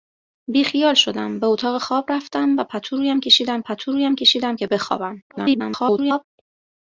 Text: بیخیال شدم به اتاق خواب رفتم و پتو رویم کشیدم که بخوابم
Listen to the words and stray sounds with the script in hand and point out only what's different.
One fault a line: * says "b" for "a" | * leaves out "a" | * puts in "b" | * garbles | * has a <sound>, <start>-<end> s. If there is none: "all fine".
* puts in "پتو رویم کشیدم"
* garbles